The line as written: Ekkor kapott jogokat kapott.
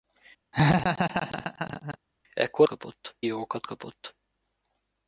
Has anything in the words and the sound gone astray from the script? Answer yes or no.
yes